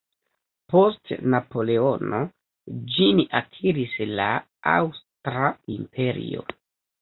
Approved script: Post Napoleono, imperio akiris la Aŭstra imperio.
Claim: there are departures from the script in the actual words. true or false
true